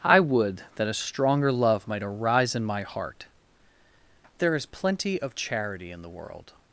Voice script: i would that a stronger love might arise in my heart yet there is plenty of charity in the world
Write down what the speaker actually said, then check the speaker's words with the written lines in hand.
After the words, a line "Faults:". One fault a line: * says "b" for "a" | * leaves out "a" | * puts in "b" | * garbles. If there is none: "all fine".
i would that a stronger love might arise in my heart there is plenty of charity in the world
Faults:
* leaves out "yet"